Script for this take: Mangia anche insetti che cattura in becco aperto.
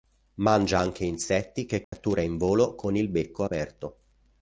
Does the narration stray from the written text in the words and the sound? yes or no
yes